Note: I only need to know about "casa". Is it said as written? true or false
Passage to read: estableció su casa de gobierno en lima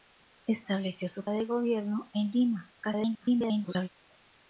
false